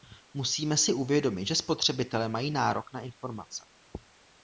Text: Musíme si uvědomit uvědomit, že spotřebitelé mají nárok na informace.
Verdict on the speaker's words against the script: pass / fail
fail